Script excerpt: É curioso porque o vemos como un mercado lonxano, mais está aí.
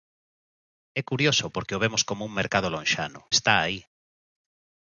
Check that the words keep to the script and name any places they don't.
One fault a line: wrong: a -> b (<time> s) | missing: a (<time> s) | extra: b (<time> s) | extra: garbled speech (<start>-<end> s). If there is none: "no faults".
missing: mais (3.2 s)